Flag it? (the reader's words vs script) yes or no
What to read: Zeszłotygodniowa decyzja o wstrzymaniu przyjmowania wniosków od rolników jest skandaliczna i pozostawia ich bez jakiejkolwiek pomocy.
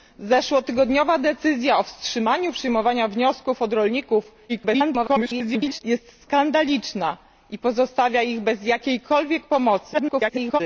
yes